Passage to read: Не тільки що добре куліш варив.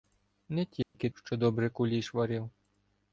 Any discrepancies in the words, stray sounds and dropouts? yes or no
yes